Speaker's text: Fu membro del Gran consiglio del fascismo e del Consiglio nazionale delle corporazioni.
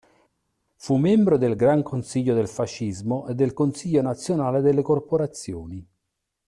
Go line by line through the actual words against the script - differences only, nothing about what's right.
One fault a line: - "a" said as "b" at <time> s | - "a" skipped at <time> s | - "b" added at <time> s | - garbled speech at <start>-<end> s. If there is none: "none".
none